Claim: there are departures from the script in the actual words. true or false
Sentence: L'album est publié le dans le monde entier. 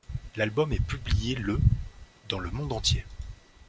false